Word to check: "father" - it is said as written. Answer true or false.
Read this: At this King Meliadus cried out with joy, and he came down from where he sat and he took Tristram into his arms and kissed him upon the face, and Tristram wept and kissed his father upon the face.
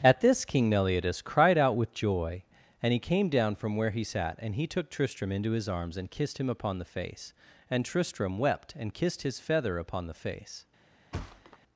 false